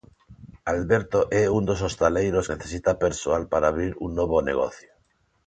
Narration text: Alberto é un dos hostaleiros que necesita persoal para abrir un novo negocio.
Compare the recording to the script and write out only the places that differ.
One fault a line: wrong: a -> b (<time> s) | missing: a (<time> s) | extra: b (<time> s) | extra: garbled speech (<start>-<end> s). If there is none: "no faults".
missing: que (2.5 s)